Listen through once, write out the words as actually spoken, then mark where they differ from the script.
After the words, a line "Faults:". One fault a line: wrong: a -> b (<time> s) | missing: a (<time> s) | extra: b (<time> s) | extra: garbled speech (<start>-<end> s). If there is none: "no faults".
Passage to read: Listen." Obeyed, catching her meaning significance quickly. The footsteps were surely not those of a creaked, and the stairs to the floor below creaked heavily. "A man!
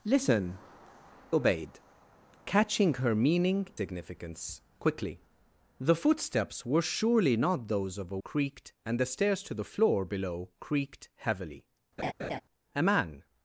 Listen." Obeyed, catching her meaning significance quickly. The footsteps were surely not those of a creaked, and the stairs to the floor below creaked heavily. "A man!
Faults:
no faults